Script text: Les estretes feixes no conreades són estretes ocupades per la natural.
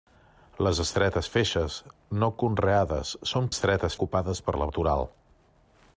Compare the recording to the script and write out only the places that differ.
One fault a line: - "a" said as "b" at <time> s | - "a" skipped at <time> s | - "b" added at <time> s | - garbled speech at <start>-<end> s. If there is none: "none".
none